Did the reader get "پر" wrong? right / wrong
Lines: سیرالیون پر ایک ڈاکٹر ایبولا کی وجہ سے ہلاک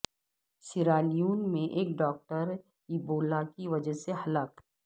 wrong